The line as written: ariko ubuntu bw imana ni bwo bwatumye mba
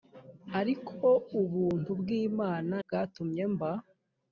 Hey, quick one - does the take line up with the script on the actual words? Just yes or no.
no